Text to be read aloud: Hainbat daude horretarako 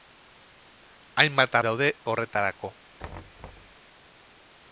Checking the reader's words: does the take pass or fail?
pass